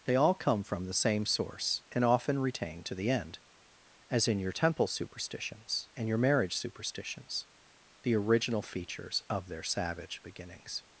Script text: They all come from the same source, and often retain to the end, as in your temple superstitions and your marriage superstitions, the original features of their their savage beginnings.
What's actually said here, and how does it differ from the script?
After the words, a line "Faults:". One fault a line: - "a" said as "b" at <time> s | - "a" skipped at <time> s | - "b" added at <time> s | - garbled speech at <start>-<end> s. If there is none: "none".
They all come from the same source, and often retain to the end, as in your temple superstitions and your marriage superstitions, the original features of their savage beginnings.
Faults:
- "their" skipped at 9.6 s